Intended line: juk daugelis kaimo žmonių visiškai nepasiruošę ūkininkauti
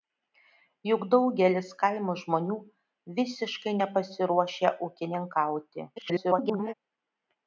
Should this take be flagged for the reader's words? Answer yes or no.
yes